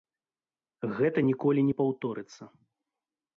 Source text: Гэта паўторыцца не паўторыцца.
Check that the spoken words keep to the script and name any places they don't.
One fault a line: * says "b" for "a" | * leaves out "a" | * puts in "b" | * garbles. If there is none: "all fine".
* says "ніколі" for "паўторыцца"